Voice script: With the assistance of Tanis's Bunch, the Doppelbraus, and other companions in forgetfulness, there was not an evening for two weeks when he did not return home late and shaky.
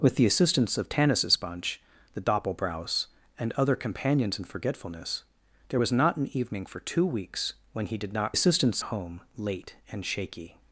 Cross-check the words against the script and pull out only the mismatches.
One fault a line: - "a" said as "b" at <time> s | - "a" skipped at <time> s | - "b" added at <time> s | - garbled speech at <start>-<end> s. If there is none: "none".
- "return" said as "assistance" at 8.3 s